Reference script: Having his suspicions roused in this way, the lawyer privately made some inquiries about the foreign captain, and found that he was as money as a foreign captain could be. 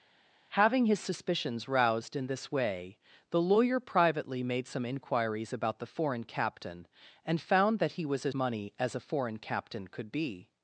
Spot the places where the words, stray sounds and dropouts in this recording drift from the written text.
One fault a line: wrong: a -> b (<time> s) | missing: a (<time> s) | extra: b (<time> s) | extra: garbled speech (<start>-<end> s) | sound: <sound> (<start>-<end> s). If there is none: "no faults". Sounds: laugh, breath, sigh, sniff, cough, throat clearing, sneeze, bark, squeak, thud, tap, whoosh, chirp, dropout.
no faults